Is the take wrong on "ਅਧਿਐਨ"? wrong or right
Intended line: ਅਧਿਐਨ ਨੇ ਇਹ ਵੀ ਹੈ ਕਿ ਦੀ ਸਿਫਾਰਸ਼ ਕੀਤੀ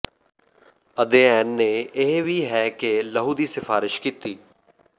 right